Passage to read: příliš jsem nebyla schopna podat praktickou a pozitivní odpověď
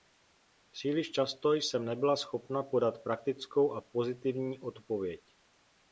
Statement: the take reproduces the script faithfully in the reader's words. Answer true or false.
false